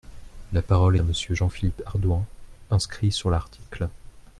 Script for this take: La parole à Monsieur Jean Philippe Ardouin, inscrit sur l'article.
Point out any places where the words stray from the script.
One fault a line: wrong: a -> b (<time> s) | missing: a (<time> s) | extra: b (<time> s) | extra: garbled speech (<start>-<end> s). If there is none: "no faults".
no faults